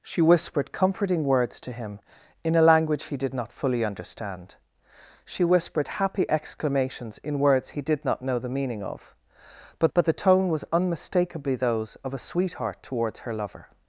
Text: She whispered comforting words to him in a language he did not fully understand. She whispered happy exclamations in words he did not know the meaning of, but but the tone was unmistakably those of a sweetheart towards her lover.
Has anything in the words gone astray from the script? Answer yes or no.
no